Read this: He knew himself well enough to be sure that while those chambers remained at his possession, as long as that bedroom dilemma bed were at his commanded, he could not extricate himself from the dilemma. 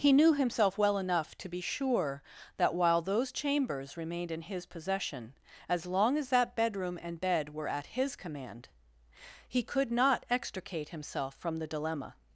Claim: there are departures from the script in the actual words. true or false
true